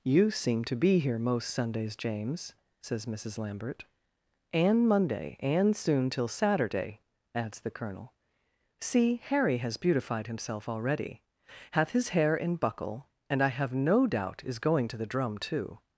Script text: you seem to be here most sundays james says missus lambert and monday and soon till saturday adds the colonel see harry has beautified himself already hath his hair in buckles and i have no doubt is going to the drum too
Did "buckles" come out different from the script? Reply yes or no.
yes